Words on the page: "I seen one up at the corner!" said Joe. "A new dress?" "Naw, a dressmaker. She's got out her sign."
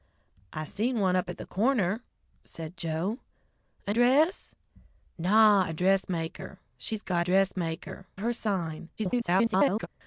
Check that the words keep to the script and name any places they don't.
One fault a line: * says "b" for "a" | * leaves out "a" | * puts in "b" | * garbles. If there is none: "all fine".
* leaves out "new"
* says "dressmaker" for "out"
* garbles